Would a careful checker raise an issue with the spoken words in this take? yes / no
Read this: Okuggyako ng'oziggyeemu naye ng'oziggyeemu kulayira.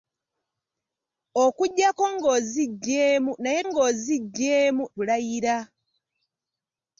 no